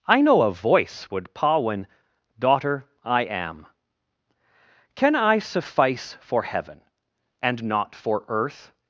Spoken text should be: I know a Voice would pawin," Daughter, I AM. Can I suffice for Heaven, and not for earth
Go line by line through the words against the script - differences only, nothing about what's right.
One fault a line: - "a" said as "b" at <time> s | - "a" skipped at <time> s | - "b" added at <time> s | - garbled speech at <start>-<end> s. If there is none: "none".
none